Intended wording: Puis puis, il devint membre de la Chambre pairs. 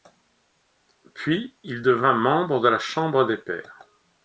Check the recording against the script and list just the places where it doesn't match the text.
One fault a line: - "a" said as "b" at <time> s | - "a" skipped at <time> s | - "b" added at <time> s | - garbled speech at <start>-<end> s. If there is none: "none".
- "puis" skipped at 1.6 s
- "des" added at 3.3 s